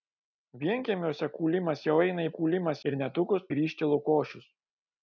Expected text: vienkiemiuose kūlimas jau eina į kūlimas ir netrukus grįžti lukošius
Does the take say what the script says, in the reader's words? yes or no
yes